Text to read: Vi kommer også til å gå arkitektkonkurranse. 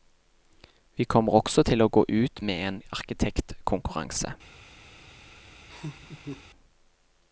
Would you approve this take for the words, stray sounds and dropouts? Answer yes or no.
no